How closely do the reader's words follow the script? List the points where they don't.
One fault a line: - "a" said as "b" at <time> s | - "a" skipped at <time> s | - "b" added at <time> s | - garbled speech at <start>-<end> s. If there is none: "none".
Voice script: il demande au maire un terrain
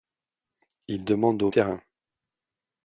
- "maire un" skipped at 1.5 s